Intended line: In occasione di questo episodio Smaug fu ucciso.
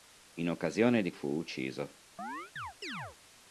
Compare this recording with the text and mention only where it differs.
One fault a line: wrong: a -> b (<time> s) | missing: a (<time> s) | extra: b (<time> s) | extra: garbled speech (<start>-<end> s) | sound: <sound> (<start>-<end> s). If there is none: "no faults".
missing: questo episodio Smaug (1.1 s)
sound: chirp (2.2-3.2 s)